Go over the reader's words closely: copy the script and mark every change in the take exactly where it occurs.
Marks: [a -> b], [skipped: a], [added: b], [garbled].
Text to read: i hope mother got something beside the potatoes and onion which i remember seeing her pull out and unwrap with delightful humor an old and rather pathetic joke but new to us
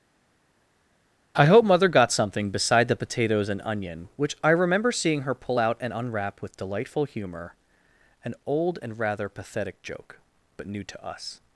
i hope mother got something beside the potatoes and onion which i remember seeing her pull out and unwrap with delightful humor an old and rather pathetic joke but new to us